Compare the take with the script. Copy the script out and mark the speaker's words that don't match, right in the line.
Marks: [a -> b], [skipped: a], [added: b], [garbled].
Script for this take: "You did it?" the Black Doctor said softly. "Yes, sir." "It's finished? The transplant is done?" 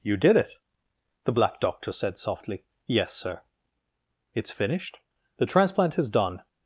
"You did it?" the Black Doctor said softly. "Yes, sir." "It's finished? The transplant is done?"